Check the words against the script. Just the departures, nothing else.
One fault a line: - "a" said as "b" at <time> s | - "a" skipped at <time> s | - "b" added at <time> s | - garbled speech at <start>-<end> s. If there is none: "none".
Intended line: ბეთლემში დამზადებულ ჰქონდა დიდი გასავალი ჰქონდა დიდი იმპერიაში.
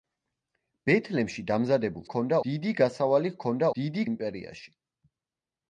none